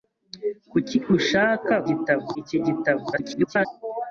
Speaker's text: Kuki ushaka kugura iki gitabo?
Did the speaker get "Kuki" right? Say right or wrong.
right